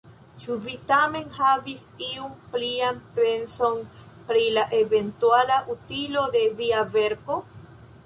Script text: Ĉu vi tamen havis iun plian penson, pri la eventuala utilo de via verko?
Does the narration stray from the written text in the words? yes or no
no